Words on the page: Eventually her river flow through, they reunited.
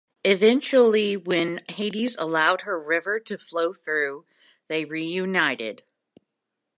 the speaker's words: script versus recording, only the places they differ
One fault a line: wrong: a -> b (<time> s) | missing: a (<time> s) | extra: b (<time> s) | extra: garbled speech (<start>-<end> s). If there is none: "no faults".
extra: when Hades allowed (1.1 s)
extra: to (3.2 s)